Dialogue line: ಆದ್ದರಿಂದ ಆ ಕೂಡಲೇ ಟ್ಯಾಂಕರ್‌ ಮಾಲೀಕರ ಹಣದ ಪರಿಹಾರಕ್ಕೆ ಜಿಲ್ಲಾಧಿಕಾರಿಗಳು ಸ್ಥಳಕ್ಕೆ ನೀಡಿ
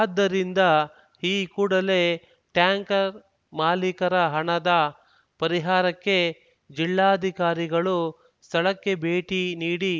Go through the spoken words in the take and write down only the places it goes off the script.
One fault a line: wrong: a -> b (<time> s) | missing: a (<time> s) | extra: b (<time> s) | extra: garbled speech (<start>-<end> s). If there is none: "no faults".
wrong: ಆ -> ಈ (1.2 s)
extra: ಭೇಟಿ (9.0 s)